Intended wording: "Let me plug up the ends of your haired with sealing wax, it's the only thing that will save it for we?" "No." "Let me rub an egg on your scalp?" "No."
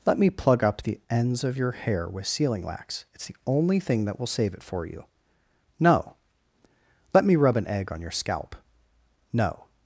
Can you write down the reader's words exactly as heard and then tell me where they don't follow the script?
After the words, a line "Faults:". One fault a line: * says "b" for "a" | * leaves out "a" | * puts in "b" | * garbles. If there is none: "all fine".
"Let me plug up the ends of your hair with sealing wax, it's the only thing that will save it for you?" "No." "Let me rub an egg on your scalp?" "No."
Faults:
* says "hair" for "haired"
* says "you" for "we"